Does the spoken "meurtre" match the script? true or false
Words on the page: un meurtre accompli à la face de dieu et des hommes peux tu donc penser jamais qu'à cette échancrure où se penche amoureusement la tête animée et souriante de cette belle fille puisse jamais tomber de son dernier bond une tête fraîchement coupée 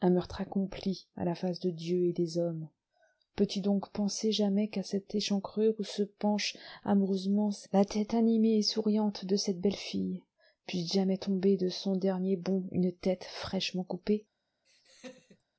true